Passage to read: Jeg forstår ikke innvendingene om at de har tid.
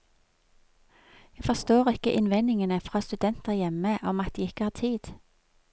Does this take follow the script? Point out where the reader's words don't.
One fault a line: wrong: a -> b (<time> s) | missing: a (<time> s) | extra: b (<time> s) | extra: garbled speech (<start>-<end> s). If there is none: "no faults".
extra: fra studenter hjemme (2.8 s)
extra: ikke (4.4 s)